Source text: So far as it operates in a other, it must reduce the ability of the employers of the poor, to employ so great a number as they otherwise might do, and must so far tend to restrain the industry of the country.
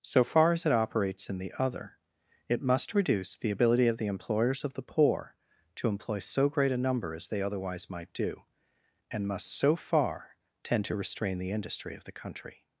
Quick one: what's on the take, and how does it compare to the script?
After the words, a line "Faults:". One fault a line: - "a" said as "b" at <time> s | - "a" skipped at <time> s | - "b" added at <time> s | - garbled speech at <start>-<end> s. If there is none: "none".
So far as it operates in the other, it must reduce the ability of the employers of the poor, to employ so great a number as they otherwise might do, and must so far tend to restrain the industry of the country.
Faults:
- "a" said as "the" at 1.4 s